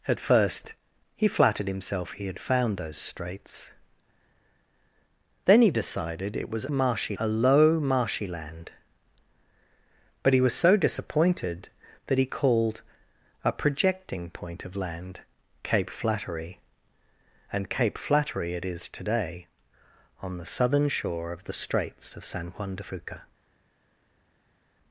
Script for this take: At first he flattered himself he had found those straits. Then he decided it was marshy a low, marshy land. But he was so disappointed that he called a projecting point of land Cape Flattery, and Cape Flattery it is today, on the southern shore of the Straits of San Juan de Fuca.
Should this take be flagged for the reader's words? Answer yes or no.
no